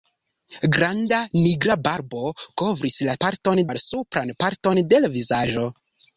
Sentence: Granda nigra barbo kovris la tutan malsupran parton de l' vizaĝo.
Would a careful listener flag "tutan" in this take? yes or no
yes